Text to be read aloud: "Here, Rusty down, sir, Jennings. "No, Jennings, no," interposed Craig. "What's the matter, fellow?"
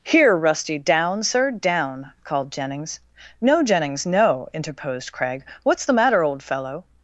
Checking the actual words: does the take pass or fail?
fail